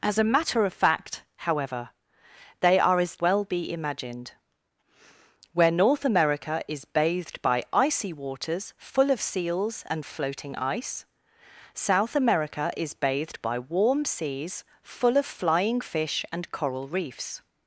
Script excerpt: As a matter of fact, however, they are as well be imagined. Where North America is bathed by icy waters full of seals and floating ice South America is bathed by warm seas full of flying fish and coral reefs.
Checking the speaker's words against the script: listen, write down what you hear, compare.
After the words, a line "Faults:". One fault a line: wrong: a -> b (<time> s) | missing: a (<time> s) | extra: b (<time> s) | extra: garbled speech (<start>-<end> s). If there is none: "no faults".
As a matter of fact, however, they are as well be imagined. Where North America is bathed by icy waters full of seals and floating ice South America is bathed by warm seas full of flying fish and coral reefs.
Faults:
no faults